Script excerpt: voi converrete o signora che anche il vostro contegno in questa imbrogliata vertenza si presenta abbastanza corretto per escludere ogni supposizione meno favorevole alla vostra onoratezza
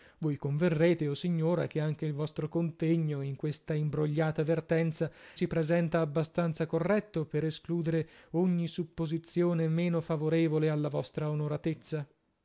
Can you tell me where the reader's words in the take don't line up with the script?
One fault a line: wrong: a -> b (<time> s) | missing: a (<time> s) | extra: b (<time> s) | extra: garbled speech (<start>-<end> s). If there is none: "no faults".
no faults